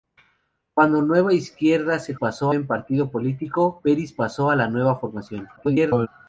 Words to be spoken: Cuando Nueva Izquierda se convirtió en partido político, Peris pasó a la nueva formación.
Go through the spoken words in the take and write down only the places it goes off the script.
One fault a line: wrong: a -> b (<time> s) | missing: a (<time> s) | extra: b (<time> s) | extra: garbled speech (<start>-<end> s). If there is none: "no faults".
wrong: convirtió -> pasó (2.2 s)
extra: garbled speech (5.6-6.1 s)